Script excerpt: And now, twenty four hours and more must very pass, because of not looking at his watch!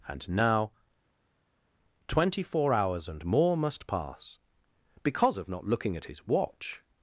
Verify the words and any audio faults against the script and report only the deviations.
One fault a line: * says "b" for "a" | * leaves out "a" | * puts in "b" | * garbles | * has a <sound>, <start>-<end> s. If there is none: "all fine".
* leaves out "very"